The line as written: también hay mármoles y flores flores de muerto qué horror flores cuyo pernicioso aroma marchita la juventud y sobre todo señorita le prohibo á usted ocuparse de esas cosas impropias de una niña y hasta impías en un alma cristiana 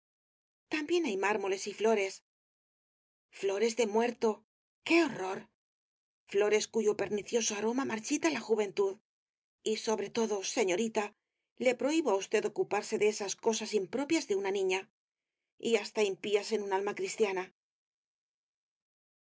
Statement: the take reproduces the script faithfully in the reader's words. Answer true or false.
true